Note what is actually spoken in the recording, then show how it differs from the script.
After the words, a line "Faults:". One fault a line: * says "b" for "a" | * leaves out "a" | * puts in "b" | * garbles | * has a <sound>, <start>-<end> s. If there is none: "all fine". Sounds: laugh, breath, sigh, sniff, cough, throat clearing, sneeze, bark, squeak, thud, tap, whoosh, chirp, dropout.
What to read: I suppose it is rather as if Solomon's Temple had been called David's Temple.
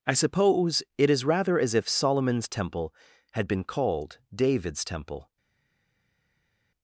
I suppose it is rather as if Solomon's Temple had been called David's Temple.
Faults:
all fine